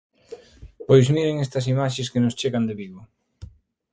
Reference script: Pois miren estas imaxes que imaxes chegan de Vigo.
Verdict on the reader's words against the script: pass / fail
fail